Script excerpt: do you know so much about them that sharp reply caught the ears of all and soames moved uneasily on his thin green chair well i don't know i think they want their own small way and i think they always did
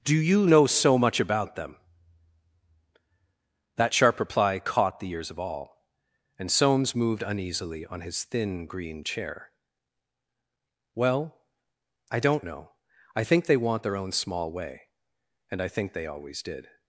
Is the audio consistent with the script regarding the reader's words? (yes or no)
yes